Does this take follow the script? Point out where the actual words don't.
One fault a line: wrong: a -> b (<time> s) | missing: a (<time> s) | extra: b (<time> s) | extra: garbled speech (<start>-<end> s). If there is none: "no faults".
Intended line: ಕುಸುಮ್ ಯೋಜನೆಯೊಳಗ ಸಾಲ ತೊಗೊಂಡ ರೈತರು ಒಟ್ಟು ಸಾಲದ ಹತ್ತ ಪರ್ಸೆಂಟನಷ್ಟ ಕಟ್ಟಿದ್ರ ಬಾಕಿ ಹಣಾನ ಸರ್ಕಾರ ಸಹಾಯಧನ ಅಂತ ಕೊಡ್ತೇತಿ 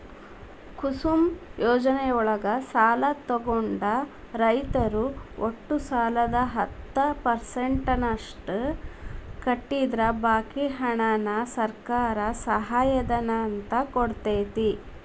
no faults